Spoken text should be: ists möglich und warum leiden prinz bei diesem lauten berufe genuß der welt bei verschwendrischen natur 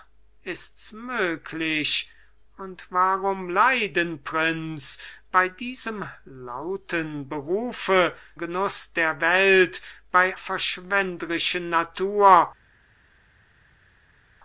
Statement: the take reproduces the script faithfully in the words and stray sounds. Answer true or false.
true